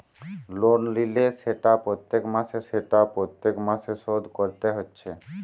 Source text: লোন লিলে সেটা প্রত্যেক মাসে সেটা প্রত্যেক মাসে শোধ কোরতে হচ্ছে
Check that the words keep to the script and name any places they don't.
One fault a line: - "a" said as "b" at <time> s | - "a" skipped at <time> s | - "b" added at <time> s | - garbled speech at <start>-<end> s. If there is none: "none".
none